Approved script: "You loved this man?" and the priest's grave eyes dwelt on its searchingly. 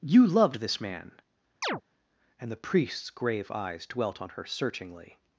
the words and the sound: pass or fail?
fail